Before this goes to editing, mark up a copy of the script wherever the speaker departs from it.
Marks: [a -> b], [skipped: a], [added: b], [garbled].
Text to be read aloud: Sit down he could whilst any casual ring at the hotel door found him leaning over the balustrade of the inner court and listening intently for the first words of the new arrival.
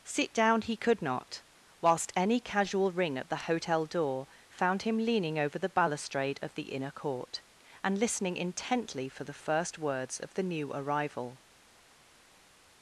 Sit down he could [added: not] whilst any casual ring at the hotel door found him leaning over the balustrade of the inner court and listening intently for the first words of the new arrival.